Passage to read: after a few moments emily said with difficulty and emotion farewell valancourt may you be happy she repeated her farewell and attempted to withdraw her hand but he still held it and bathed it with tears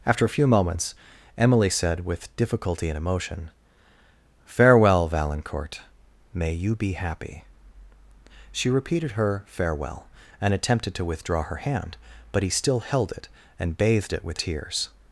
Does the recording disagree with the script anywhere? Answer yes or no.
no